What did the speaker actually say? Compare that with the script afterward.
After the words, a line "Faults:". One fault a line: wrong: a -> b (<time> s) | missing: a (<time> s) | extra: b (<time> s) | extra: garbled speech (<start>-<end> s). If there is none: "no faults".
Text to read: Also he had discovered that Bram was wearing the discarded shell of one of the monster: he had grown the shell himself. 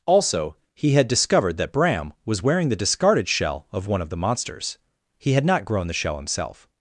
Also he had discovered that Bram was wearing the discarded shell of one of the monsters: he had not grown the shell himself.
Faults:
wrong: monster -> monsters (4.2 s)
extra: not (5.4 s)